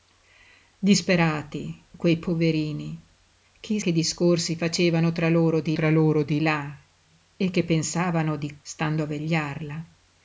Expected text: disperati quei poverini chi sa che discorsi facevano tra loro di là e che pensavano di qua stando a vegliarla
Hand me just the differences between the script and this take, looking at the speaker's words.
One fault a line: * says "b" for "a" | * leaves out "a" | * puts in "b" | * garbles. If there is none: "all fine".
* leaves out "sa"
* puts in "tra loro di"
* leaves out "qua"